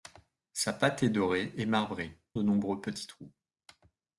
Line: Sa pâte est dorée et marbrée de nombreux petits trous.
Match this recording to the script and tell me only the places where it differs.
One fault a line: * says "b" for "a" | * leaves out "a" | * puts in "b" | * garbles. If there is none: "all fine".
all fine